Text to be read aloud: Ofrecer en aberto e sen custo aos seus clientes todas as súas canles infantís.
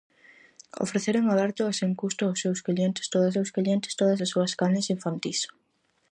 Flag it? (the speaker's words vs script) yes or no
yes